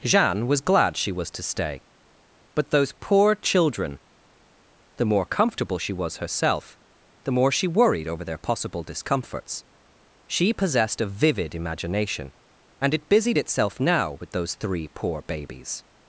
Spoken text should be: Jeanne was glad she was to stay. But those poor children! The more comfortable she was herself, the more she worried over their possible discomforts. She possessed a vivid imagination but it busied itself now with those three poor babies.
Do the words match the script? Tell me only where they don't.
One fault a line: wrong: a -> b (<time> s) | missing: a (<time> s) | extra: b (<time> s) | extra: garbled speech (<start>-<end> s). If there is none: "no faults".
wrong: but -> and (12.8 s)